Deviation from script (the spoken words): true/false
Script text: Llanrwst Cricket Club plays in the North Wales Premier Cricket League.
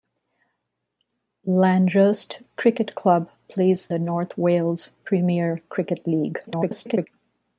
true